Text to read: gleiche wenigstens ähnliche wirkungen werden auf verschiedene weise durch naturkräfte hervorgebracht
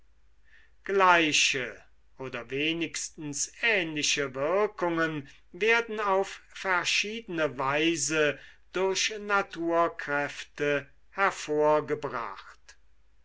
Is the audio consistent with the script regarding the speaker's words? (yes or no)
no